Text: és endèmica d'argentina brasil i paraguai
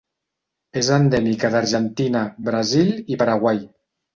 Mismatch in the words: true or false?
false